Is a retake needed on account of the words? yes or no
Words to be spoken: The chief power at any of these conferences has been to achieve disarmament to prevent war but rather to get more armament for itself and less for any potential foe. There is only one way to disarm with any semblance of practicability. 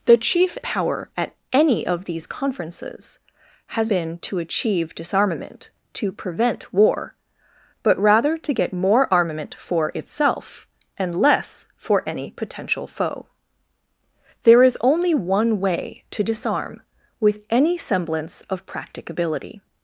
no